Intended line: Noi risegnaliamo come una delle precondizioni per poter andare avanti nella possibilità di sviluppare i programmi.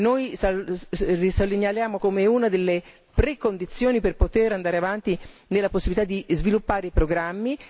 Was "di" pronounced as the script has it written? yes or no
yes